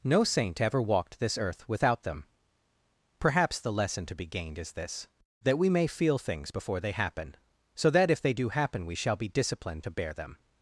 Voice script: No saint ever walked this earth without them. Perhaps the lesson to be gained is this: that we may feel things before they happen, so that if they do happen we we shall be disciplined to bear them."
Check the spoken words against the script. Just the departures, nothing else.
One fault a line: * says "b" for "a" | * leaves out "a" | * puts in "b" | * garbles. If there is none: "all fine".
* leaves out "we"